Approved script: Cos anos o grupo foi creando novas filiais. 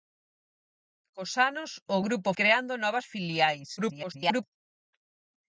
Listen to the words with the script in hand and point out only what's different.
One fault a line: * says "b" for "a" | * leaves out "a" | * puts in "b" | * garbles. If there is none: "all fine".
* leaves out "foi"
* garbles